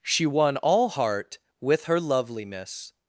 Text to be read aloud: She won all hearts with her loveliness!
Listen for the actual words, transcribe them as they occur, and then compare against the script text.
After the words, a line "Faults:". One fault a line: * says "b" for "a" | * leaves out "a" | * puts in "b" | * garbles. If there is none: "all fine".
She won all heart with her loveliness!
Faults:
* says "heart" for "hearts"